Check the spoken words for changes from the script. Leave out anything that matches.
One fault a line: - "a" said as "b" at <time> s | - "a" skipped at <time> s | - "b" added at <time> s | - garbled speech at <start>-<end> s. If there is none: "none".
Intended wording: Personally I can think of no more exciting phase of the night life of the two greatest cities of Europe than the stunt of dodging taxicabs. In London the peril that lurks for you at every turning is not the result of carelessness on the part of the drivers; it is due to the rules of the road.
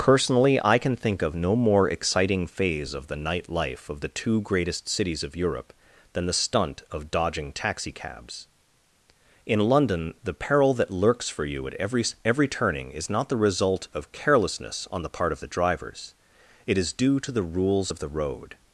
- "every" added at 12.2 s